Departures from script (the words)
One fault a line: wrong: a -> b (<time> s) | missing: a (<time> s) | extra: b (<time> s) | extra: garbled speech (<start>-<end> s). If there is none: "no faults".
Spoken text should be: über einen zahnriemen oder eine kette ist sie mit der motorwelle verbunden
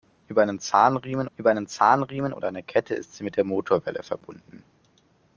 extra: über einen zahnriemen (1.4 s)